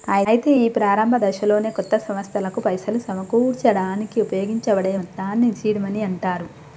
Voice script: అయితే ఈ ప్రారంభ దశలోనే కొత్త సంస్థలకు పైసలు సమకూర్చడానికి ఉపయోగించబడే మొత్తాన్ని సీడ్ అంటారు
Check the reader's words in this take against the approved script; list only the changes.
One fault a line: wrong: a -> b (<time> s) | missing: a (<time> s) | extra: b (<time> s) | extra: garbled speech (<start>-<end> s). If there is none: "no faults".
extra: మనీ (5.8 s)